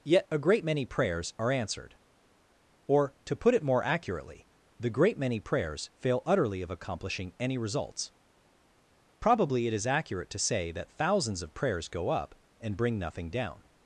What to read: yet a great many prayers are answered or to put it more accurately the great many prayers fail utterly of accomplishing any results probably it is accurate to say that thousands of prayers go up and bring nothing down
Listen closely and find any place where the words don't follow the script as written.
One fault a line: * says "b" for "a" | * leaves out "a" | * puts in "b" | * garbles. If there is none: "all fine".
all fine